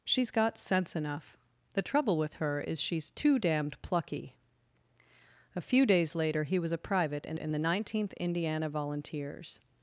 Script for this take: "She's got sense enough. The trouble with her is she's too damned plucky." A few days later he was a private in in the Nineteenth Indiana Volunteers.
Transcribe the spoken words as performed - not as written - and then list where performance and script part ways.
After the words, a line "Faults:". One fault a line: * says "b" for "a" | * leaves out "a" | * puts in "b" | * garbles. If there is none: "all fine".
"She's got sense enough. The trouble with her is she's too damned plucky." A few days later he was a private in in the Nineteenth Indiana Volunteers.
Faults:
all fine